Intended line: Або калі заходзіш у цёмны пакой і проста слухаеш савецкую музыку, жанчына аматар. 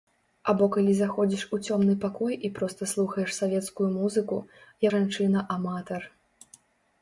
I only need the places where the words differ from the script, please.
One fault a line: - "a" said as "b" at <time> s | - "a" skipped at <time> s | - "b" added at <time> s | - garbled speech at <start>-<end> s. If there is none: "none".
none